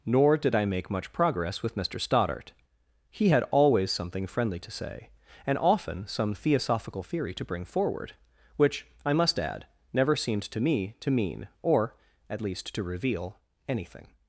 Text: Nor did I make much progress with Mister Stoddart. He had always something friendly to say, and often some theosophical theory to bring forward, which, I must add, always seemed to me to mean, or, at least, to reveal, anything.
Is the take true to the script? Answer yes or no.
no